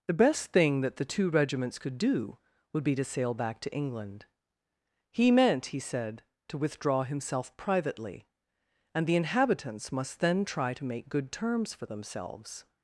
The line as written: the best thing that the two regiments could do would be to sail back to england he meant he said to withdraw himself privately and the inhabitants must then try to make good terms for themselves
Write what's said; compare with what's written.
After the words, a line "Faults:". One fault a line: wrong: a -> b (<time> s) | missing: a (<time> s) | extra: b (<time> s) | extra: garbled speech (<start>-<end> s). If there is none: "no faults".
the best thing that the two regiments could do would be to sail back to england he meant he said to withdraw himself privately and the inhabitants must then try to make good terms for themselves
Faults:
no faults